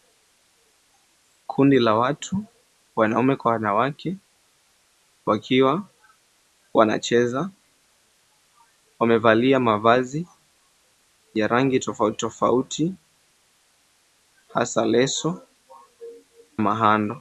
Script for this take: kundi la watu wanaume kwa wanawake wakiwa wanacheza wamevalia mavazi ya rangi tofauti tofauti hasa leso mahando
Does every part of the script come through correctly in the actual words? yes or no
yes